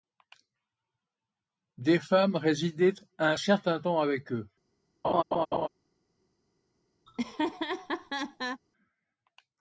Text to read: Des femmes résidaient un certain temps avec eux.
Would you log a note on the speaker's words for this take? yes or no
no